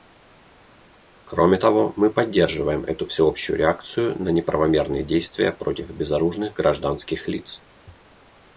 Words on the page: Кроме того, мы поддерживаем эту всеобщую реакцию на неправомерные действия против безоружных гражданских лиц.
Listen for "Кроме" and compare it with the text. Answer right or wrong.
right